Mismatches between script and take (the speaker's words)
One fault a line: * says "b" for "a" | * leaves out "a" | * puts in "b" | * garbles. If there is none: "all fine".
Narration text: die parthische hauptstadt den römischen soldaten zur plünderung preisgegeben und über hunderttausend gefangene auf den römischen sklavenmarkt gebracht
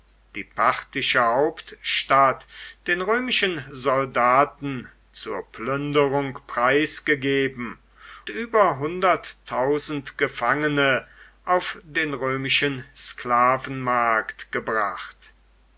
* leaves out "und"